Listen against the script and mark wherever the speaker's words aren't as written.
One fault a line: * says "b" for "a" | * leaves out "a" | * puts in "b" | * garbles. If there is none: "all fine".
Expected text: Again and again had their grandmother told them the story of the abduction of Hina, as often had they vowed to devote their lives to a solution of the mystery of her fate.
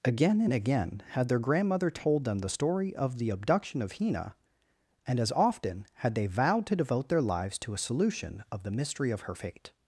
* puts in "and"